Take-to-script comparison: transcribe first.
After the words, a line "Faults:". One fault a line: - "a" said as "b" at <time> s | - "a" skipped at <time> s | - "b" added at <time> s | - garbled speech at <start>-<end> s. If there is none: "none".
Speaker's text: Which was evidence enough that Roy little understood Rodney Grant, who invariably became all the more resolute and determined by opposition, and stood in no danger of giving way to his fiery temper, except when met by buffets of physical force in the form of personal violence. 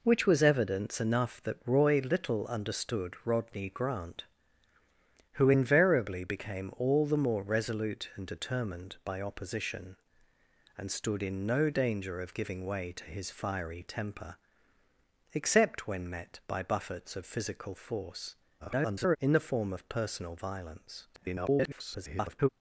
Which was evidence enough that Roy little understood Rodney Grant, who invariably became all the more resolute and determined by opposition, and stood in no danger of giving way to his fiery temper, except when met by buffets of physical force [garbled] in the form of personal violence. [garbled]
Faults:
- garbled speech at 18.6-19.2 s
- garbled speech at 21.1-22.5 s